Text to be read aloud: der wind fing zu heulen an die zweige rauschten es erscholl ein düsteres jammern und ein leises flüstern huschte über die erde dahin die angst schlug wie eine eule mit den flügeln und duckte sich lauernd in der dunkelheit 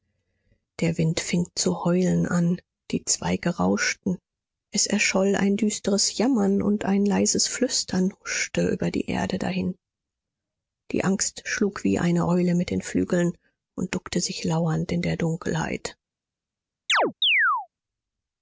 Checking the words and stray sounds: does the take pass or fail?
fail